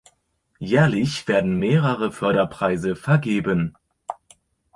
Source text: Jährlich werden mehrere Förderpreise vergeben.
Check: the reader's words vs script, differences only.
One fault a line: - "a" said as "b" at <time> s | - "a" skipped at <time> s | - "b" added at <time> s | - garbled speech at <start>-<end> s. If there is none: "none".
none